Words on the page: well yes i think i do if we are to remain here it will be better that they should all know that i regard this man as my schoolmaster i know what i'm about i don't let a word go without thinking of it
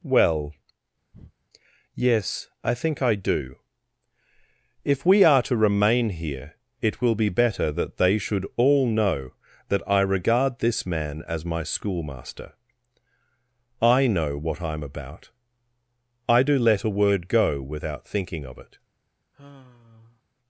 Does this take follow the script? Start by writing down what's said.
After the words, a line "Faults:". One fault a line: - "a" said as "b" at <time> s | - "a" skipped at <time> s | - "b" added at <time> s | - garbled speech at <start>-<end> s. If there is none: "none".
well yes i think i do if we are to remain here it will be better that they should all know that i regard this man as my schoolmaster i know what i'm about i do let a word go without thinking of it
Faults:
- "don't" said as "do" at 16.4 s